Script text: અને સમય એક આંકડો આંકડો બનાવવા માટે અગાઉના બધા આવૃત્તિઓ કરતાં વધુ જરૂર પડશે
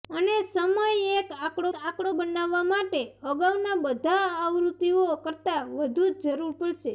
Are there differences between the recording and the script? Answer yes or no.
no